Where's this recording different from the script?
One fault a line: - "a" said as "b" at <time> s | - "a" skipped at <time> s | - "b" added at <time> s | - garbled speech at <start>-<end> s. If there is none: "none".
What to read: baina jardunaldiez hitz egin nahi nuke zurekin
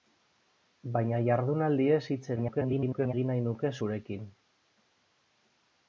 - garbled speech at 2.4-3.1 s